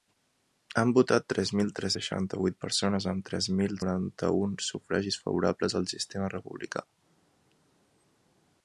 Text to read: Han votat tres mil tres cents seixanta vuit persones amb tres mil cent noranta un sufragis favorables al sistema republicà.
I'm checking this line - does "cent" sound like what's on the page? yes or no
no